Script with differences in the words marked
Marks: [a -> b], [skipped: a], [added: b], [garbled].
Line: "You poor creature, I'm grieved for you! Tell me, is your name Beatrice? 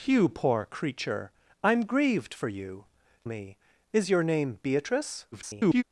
"You poor creature, I'm grieved for you! [skipped: Tell] me, is your name Beatrice? [garbled]